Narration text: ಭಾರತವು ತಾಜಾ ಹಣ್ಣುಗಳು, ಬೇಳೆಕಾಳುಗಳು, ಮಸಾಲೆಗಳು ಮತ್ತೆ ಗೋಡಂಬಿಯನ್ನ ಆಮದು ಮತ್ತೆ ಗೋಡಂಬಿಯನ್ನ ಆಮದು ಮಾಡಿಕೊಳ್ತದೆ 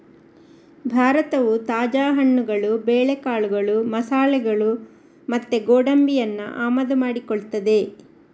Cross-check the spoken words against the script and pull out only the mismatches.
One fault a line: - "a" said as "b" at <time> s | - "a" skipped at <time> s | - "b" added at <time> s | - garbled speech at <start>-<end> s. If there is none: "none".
- "ಮತ್ತೆ ಗೋಡಂಬಿಯನ್ನ ಆಮದು" skipped at 7.0 s